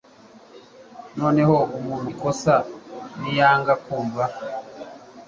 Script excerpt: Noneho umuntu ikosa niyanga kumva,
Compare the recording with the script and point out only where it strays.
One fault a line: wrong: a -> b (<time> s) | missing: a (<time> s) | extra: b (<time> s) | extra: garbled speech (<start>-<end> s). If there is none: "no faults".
no faults